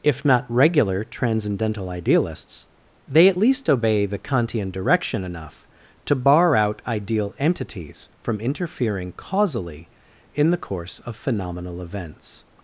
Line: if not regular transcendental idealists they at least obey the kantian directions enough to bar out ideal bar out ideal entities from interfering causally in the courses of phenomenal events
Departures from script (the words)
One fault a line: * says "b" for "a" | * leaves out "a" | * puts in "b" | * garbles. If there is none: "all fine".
* says "direction" for "directions"
* leaves out "bar out ideal"
* says "course" for "courses"